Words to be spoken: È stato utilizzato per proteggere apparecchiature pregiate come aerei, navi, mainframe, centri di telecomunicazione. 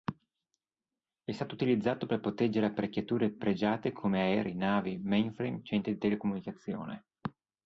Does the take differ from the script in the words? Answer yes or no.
no